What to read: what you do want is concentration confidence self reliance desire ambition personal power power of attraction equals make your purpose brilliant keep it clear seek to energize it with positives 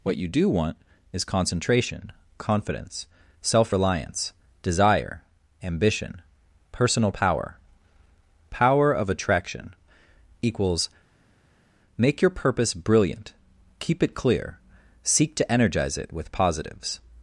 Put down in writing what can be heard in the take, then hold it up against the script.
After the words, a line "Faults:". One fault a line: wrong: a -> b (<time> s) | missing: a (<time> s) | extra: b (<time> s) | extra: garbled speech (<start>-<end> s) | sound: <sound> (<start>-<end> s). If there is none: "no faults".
what you do want is concentration confidence self reliance desire ambition personal power power of attraction equals make your purpose brilliant keep it clear seek to energize it with positives
Faults:
no faults